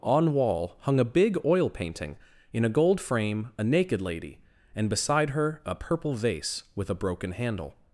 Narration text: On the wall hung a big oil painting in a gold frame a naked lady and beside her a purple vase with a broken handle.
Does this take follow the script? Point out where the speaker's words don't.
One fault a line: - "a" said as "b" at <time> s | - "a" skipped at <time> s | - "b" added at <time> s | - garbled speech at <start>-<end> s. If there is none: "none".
- "the" skipped at 0.3 s